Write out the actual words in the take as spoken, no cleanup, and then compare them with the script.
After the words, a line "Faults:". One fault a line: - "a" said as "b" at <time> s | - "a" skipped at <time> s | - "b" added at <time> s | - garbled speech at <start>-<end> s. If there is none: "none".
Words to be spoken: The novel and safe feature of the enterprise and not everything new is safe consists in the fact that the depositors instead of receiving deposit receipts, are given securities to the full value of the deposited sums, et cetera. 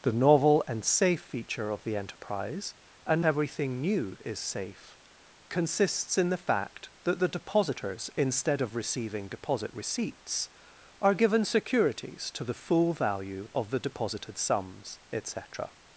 The novel and safe feature of the enterprise and everything new is safe consists in the fact that the depositors instead of receiving deposit receipts, are given securities to the full value of the deposited sums, et cetera.
Faults:
- "not" skipped at 3.2 s